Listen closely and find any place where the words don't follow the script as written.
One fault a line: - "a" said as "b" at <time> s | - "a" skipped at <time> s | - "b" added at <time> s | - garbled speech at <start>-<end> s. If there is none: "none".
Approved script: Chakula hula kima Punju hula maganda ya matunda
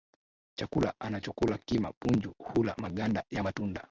- "hula" said as "anachokula" at 1.0 s